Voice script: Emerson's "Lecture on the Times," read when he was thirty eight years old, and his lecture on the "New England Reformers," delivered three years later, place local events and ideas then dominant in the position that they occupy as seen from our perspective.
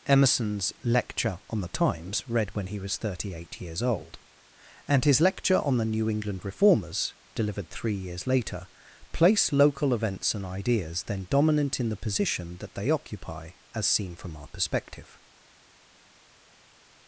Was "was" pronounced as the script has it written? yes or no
yes